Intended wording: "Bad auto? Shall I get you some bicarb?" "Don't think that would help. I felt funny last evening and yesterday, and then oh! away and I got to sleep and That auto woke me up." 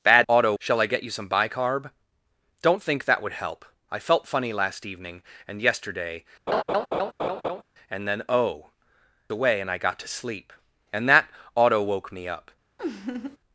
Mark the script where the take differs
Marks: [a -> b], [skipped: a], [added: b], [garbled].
"Bad auto? Shall I get you some bicarb?" "Don't think that would help. I felt funny last evening and yesterday, and then oh! away and I got to sleep and That auto woke me up."